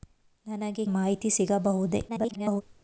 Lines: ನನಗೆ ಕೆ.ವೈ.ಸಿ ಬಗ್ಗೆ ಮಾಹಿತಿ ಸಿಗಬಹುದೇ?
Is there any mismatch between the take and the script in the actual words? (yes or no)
yes